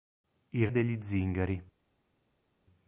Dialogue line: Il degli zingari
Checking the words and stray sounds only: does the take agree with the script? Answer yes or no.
yes